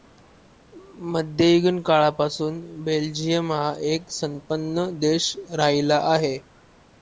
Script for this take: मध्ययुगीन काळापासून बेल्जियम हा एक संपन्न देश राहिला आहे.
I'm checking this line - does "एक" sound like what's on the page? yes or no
yes